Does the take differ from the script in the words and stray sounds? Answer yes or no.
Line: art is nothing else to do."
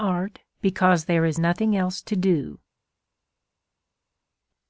yes